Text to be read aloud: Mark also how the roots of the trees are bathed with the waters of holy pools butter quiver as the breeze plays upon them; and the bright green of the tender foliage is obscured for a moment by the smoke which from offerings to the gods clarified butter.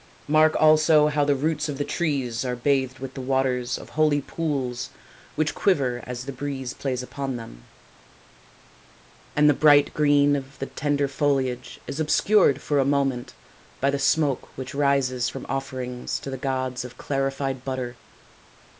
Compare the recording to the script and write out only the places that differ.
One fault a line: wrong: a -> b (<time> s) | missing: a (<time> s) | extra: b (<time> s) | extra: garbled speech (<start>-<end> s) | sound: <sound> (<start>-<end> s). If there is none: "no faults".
wrong: butter -> which (5.3 s)
extra: rises (14.7 s)
extra: of (16.8 s)